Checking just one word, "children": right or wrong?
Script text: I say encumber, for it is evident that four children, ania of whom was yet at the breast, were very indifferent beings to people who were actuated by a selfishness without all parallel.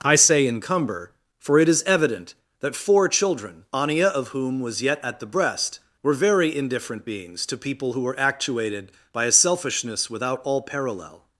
right